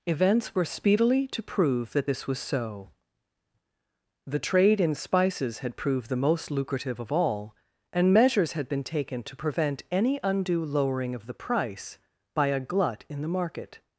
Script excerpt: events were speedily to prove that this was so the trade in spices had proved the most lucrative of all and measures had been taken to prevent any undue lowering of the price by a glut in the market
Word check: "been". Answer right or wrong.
right